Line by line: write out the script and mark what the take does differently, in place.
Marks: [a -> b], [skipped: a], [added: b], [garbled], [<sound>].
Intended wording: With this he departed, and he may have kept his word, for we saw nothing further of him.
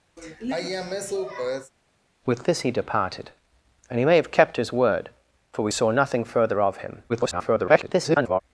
[sigh] With this he departed, and he may have kept his word, for we saw nothing further of him. [garbled]